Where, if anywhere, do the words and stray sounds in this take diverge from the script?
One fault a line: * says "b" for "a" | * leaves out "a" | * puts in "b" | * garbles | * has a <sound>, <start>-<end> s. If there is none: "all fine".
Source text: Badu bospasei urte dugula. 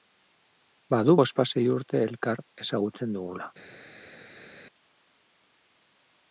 * puts in "elkar ezagutzen"